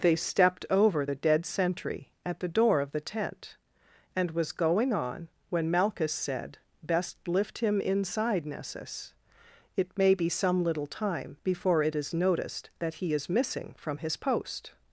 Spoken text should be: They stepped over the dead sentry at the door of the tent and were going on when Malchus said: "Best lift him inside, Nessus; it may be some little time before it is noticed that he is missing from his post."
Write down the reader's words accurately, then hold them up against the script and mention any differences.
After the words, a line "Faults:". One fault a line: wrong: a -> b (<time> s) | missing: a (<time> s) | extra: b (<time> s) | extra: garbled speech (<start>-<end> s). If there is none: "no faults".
They stepped over the dead sentry at the door of the tent and was going on when Malchus said: "Best lift him inside, Nessus; it may be some little time before it is noticed that he is missing from his post."
Faults:
wrong: were -> was (4.3 s)